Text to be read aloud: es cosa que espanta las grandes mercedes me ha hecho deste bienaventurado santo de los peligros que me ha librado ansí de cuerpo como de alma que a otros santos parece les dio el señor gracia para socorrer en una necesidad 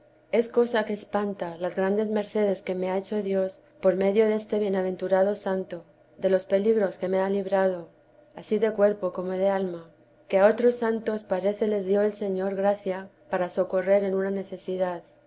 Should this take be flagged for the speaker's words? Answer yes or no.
yes